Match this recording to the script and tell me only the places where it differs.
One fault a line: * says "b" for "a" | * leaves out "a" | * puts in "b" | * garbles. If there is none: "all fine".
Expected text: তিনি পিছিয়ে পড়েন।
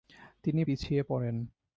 all fine